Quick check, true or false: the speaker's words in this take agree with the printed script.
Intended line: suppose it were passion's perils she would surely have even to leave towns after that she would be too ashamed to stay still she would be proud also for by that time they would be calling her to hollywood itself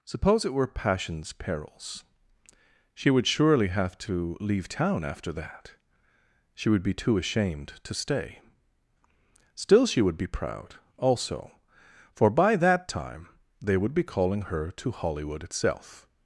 false